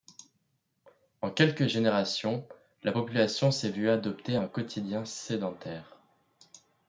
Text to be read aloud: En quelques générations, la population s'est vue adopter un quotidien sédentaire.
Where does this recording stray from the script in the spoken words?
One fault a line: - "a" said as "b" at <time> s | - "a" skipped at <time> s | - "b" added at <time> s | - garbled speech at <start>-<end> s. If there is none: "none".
none